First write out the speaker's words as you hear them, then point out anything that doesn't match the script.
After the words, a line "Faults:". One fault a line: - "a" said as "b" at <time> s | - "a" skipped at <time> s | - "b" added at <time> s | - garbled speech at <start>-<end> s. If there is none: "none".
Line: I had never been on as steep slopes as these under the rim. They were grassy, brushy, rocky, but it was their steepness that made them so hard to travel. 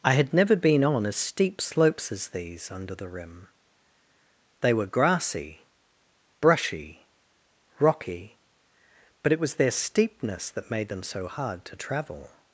I had never been on as steep slopes as these under the rim. They were grassy, brushy, rocky, but it was their steepness that made them so hard to travel.
Faults:
none